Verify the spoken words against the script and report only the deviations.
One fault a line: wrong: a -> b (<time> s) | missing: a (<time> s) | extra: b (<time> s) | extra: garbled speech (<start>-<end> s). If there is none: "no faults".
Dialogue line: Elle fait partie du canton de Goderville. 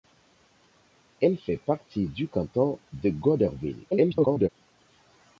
extra: garbled speech (3.9-4.5 s)